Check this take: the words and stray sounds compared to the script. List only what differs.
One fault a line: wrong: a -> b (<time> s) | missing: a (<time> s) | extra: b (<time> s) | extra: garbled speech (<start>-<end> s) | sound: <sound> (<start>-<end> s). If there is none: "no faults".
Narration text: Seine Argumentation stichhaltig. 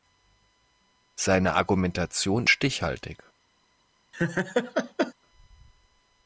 sound: laugh (4.1-5.1 s)